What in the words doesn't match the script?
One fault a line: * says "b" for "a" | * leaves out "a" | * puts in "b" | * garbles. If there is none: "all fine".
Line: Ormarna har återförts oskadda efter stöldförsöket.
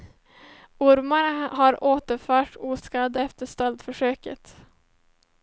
all fine